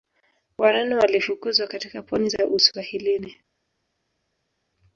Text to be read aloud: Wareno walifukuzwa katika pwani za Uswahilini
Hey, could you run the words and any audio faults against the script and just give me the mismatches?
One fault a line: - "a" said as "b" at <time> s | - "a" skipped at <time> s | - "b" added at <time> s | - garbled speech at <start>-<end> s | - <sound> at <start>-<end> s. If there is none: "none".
none